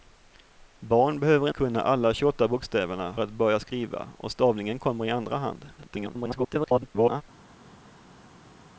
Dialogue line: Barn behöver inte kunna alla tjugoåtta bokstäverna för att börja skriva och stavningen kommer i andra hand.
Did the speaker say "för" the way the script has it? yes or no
no